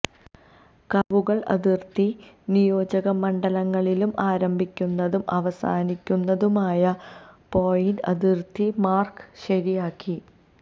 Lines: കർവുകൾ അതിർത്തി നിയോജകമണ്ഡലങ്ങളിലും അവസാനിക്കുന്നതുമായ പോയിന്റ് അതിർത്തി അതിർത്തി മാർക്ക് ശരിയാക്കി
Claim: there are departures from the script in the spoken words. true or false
true